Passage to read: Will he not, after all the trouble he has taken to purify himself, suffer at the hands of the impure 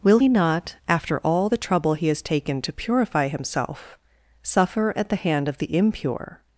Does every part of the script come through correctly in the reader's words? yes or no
no